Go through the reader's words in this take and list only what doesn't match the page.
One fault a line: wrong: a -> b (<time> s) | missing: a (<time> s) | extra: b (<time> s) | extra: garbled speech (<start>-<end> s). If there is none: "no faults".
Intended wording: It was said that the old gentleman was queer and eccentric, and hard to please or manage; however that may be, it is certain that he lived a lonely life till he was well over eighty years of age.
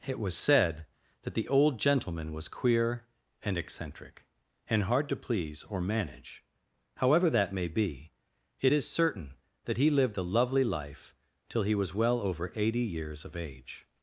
wrong: lonely -> lovely (10.2 s)